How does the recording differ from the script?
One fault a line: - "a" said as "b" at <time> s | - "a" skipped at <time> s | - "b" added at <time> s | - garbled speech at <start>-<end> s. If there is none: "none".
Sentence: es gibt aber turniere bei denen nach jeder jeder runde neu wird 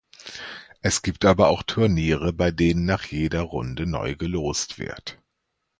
- "auch" added at 1.5 s
- "jeder" skipped at 3.4 s
- "gelost" added at 4.2 s